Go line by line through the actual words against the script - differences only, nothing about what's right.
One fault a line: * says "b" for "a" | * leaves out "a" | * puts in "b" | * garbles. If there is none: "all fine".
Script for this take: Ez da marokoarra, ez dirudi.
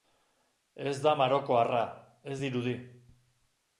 all fine